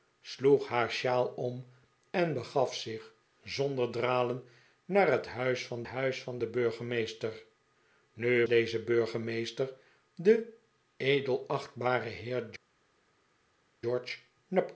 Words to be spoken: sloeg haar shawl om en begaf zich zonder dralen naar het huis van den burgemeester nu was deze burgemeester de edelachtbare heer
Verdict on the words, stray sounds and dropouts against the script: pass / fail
fail